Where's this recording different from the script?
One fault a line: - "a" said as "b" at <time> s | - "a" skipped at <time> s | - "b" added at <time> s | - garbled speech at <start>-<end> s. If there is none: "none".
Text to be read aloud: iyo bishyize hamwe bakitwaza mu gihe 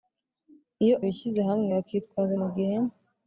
none